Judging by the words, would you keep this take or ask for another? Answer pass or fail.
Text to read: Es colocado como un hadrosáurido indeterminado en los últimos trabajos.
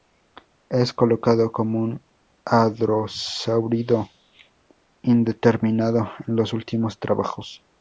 pass